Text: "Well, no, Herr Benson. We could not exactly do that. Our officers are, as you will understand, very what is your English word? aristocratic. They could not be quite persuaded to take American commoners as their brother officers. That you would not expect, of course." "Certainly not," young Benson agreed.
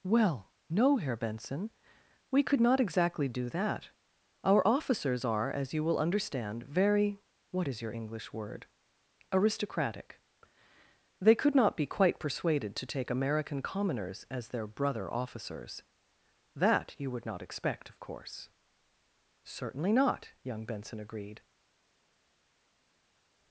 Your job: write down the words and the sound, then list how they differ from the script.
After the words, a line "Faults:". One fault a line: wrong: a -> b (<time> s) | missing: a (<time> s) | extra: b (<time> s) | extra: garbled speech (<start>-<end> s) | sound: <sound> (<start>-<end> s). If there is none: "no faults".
"Well, no, Herr Benson. We could not exactly do that. Our officers are, as you will understand, very what is your English word? aristocratic. They could not be quite persuaded to take American commoners as their brother officers. That you would not expect, of course." "Certainly not," young Benson agreed.
Faults:
no faults